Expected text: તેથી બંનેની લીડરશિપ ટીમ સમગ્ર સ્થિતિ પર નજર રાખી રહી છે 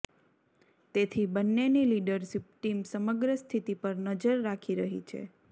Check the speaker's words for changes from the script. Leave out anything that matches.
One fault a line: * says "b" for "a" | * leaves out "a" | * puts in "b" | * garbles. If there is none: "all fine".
all fine